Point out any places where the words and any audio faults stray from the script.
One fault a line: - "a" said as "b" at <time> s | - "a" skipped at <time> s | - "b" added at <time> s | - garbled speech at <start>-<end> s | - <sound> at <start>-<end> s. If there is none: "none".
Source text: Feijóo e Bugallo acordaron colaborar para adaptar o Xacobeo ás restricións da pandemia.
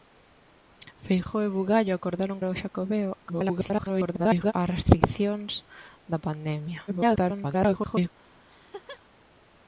- "colaborar para adaptar" skipped at 2.4 s
- garbled speech at 3.2-4.5 s
- garbled speech at 6.9-8.1 s
- laugh at 8.5-9.0 s